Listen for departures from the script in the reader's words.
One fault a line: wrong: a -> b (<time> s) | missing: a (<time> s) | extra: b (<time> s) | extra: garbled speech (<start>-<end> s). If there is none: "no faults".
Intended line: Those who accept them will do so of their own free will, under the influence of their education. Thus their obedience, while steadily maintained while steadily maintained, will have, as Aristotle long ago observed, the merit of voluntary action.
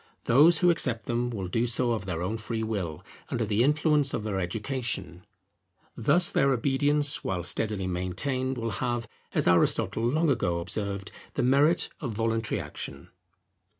missing: while steadily maintained (8.6 s)